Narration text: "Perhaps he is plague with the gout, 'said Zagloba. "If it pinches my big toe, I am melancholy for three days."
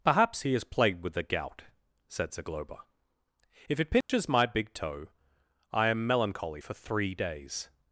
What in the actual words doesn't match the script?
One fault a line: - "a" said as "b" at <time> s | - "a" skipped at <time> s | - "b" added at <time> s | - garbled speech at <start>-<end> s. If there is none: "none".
- "plague" said as "plagued" at 0.6 s